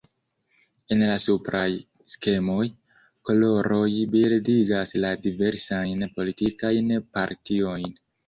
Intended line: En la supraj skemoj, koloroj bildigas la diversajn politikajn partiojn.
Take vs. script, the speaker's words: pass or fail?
pass